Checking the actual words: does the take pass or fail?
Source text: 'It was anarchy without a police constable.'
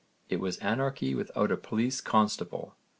pass